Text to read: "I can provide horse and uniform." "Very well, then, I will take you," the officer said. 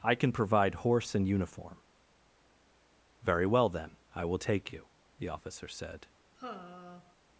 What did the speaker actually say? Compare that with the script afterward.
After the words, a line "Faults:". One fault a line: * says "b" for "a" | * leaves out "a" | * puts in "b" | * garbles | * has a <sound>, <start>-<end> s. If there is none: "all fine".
"I can provide horse and uniform." "Very well, then, I will take you," the officer said.
Faults:
* has a sigh, 6.4-7.2 s